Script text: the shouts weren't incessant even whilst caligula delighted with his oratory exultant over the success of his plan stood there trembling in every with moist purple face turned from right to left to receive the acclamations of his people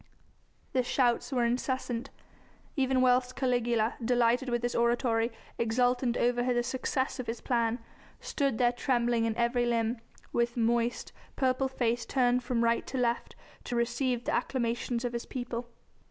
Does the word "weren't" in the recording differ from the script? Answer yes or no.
yes